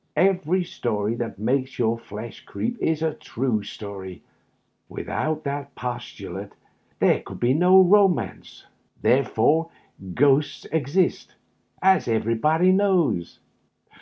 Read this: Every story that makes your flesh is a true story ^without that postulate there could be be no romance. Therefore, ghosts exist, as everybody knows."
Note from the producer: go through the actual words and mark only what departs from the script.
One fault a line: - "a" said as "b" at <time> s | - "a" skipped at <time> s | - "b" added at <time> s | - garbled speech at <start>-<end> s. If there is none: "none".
- "creep" added at 2.4 s
- "be" skipped at 7.5 s